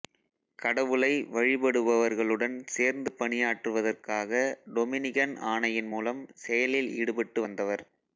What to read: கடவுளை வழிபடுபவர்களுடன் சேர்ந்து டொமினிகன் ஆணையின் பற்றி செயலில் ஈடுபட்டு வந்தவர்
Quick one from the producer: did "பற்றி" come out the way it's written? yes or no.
no